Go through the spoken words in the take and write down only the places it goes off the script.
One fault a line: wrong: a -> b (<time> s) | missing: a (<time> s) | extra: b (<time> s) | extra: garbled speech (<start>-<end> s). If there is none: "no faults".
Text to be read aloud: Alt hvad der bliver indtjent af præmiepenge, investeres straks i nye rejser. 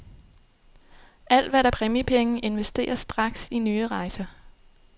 missing: bliver indtjent af (1.7 s)